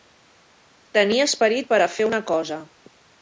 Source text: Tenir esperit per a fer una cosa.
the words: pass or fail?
pass